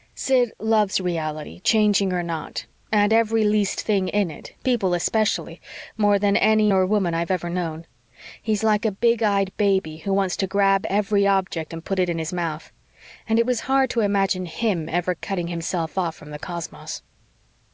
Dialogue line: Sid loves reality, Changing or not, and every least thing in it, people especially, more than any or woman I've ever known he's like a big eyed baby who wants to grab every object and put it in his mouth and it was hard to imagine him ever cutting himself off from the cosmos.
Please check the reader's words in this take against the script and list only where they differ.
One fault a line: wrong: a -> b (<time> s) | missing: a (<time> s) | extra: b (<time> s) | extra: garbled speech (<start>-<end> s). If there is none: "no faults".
no faults